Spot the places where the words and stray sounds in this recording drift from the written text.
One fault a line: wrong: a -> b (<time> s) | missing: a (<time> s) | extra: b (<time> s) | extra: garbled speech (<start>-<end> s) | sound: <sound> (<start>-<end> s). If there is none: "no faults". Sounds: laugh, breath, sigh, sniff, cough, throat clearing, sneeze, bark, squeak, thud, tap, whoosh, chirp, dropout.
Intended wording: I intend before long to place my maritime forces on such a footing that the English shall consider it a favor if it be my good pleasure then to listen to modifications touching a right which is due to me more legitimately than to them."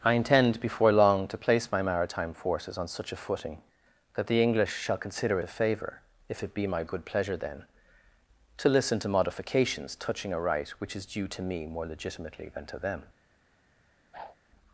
missing: it (5.4 s)
sound: whoosh (14.1-14.4 s)